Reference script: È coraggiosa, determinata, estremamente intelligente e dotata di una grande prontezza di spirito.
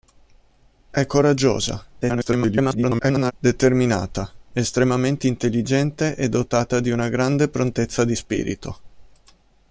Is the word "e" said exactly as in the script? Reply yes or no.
yes